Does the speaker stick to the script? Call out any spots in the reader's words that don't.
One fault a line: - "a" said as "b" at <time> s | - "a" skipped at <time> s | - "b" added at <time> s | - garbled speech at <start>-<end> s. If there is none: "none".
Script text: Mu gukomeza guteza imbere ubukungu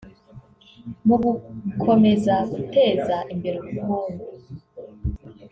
none